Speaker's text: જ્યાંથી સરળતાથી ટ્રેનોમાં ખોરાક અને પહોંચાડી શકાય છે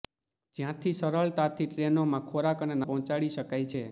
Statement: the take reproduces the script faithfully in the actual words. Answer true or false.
true